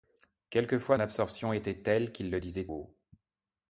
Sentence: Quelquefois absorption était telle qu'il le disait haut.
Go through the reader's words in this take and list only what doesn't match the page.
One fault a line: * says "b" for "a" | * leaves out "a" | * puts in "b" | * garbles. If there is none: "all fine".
all fine